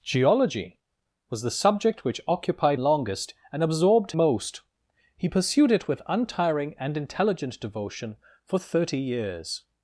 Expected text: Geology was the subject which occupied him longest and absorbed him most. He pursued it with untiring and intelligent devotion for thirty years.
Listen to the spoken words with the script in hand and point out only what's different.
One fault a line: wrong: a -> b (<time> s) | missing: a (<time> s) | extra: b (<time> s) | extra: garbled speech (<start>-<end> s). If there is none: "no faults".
missing: him (2.8 s)
missing: him (4.1 s)